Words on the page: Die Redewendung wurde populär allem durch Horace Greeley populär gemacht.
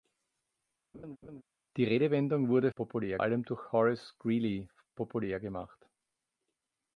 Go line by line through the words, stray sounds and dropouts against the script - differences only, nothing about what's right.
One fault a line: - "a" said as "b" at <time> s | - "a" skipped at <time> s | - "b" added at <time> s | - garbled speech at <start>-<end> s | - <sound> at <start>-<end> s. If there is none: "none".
- laugh at 0.9-1.4 s